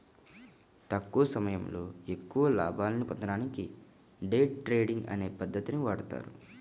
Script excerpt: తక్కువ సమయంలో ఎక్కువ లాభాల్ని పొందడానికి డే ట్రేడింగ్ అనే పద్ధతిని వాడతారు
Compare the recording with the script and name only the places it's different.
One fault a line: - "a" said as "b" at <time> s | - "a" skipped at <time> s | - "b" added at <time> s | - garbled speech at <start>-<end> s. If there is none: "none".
none